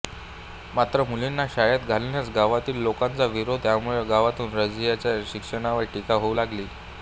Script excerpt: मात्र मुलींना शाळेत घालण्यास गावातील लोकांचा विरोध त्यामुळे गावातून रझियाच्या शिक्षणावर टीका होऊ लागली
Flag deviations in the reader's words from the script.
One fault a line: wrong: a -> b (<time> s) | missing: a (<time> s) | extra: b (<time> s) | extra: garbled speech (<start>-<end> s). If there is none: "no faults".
no faults